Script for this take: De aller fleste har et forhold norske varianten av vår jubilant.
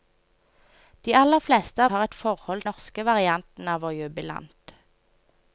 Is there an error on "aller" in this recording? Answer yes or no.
no